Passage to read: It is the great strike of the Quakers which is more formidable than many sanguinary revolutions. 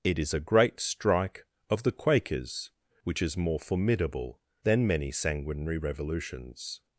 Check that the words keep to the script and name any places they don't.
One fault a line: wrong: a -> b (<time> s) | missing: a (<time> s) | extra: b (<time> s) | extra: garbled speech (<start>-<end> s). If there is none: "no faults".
wrong: the -> a (0.3 s)